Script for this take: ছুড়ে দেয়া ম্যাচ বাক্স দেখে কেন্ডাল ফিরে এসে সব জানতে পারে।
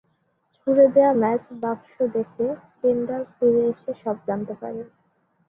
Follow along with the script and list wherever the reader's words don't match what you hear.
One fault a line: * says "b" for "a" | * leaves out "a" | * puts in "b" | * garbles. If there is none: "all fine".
all fine